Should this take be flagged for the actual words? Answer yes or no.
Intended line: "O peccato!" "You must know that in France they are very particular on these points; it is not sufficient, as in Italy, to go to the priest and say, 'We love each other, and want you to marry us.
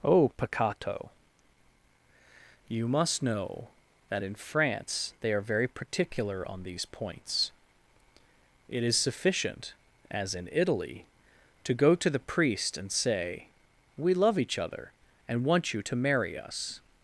yes